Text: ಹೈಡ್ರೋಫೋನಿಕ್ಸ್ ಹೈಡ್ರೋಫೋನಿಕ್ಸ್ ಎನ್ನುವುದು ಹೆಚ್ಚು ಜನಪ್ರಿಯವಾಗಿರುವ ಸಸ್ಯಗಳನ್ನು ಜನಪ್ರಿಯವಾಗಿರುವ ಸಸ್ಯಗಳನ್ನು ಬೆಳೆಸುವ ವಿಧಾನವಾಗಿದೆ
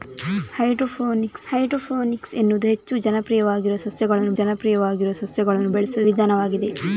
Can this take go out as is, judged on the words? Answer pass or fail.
pass